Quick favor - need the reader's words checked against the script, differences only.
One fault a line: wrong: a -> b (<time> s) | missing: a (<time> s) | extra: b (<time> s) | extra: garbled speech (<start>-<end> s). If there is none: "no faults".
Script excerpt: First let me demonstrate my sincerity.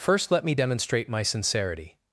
no faults